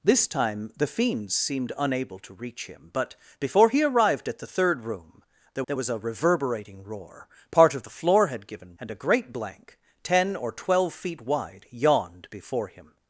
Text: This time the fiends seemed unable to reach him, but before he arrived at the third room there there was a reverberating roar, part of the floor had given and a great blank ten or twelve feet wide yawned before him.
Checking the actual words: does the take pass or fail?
pass